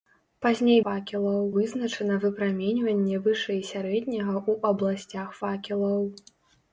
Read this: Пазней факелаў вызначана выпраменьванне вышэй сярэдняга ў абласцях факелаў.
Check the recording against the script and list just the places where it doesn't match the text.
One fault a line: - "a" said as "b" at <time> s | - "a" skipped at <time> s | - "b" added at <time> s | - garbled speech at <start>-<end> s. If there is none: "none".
none